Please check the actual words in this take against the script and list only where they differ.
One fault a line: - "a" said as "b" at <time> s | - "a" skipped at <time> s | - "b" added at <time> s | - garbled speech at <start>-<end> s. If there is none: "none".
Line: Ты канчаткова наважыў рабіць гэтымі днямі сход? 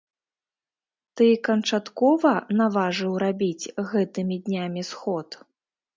none